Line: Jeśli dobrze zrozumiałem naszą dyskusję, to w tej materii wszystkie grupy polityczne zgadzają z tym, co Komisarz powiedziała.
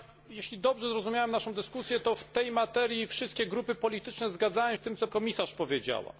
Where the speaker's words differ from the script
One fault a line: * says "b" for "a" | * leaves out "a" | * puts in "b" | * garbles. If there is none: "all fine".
all fine